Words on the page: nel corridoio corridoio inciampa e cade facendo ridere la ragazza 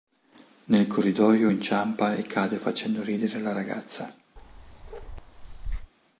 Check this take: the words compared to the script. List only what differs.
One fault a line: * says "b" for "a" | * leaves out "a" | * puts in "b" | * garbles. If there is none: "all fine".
* leaves out "corridoio"